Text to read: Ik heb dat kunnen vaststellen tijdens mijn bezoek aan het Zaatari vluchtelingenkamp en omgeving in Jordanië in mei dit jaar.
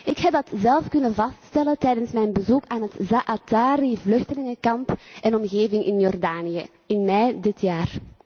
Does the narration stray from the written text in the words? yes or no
yes